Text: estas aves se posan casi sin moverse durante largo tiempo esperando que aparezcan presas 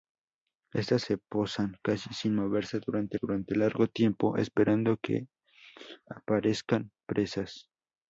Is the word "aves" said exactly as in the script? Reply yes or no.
no